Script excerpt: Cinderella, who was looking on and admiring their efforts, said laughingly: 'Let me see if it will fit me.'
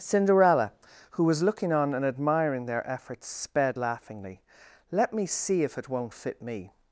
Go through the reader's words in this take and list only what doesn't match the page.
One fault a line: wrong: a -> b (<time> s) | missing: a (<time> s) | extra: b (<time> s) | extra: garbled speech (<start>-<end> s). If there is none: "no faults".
wrong: said -> sped (3.3 s)
wrong: will -> won't (5.9 s)